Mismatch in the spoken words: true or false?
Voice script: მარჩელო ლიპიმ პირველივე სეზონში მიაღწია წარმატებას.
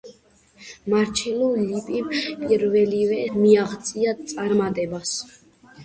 true